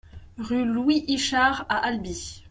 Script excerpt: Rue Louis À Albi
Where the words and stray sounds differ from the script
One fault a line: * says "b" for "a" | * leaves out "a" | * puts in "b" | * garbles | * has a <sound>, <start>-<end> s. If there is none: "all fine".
* puts in "Ichard"